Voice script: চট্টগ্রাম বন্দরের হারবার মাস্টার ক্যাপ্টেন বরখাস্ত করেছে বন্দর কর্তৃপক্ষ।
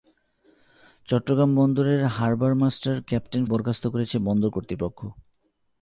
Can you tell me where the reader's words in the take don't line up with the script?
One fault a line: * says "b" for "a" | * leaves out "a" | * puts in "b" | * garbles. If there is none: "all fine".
all fine